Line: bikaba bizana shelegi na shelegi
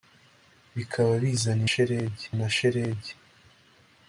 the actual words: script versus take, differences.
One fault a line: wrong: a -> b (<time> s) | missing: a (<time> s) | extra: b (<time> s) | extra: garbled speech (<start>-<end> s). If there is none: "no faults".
no faults